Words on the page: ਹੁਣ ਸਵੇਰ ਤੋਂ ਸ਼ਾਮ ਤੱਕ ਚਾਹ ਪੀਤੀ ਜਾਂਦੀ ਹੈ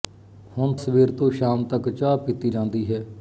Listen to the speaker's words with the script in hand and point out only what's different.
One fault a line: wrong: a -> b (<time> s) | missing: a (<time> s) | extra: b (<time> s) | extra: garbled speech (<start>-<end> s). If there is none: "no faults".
no faults